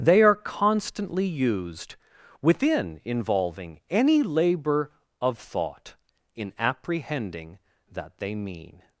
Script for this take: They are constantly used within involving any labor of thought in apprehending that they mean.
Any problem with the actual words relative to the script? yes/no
no